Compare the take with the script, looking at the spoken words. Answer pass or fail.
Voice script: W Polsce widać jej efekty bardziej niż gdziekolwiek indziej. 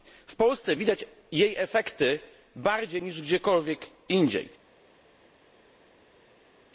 pass